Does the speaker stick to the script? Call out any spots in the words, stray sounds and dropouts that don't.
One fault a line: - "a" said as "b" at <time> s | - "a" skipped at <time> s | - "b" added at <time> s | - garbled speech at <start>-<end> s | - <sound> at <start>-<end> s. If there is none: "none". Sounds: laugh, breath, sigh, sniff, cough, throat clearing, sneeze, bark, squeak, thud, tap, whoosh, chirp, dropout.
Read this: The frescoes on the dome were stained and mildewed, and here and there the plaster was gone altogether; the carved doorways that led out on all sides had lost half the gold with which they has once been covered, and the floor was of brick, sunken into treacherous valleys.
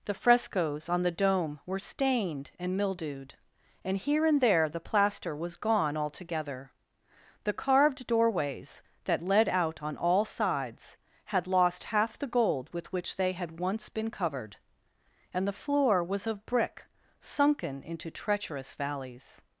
- "has" said as "had" at 13.3 s